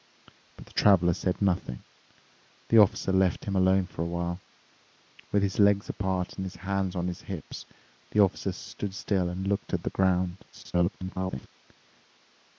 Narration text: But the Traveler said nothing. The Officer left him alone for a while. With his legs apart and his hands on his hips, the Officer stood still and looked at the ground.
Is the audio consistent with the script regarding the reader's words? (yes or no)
no